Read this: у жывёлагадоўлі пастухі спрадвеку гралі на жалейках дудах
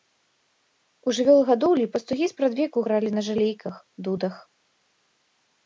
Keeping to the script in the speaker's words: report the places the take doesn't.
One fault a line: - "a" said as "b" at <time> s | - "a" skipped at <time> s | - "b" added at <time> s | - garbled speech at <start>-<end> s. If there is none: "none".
none